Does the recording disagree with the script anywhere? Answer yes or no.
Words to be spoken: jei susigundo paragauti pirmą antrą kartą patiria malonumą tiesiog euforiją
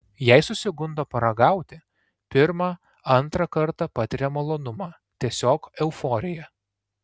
no